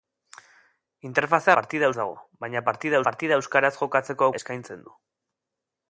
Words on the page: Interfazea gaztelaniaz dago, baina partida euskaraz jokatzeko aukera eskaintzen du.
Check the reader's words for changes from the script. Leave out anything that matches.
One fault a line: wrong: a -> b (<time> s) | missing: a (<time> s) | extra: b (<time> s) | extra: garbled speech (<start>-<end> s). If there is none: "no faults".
wrong: gaztelaniaz -> partida (1.6 s)
extra: partida (3.1 s)
missing: aukera (4.3 s)